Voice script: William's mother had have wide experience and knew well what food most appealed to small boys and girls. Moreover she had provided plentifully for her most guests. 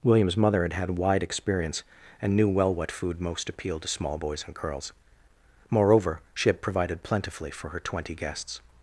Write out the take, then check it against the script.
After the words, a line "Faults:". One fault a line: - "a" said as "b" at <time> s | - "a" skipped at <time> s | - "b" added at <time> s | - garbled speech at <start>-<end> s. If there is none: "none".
William's mother had had wide experience and knew well what food most appealed to small boys and girls. Moreover she had provided plentifully for her twenty guests.
Faults:
- "have" said as "had" at 0.7 s
- "most" said as "twenty" at 7.8 s